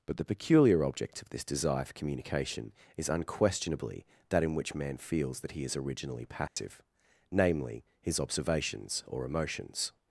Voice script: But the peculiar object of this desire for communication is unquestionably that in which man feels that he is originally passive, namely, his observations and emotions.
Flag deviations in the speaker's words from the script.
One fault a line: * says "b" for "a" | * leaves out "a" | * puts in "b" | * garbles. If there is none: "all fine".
* says "or" for "and"